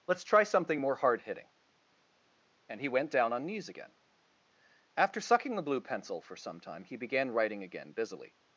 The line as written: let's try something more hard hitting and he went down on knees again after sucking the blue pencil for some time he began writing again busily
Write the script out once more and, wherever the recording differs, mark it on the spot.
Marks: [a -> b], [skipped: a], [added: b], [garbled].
let's try something more hard hitting and he went down on knees again after sucking the blue pencil for some time he began writing again busily